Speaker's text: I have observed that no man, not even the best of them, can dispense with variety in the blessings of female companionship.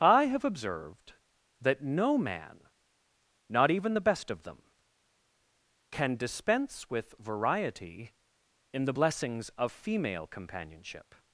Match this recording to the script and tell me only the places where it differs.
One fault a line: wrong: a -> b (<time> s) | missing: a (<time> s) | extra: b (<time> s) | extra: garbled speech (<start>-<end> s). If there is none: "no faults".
no faults